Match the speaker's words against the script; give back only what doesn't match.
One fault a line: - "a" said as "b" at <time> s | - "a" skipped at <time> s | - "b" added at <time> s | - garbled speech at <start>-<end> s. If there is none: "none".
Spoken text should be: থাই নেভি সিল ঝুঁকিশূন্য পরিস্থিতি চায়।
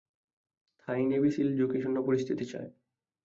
none